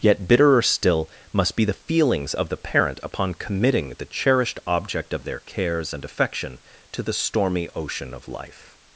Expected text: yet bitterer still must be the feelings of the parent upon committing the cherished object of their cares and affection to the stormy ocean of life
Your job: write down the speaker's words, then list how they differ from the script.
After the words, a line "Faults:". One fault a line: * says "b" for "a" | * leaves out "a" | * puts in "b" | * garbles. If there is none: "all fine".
yet bitterer still must be the feelings of the parent upon committing the cherished object of their cares and affection to the stormy ocean of life
Faults:
all fine